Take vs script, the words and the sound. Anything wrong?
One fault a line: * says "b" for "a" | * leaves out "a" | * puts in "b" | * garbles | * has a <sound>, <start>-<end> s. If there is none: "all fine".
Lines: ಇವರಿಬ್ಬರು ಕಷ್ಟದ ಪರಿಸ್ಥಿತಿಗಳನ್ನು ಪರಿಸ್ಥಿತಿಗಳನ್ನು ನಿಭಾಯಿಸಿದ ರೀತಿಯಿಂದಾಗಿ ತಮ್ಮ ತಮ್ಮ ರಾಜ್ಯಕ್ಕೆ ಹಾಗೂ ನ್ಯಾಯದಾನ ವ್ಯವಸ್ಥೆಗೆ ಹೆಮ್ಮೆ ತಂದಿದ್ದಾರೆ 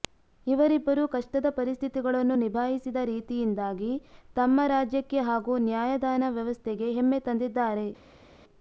* leaves out "ಪರಿಸ್ಥಿತಿಗಳನ್ನು"
* leaves out "ತಮ್ಮ"